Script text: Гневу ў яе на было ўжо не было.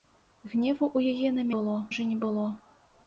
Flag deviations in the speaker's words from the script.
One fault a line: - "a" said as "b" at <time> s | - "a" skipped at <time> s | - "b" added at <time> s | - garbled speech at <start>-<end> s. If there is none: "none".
none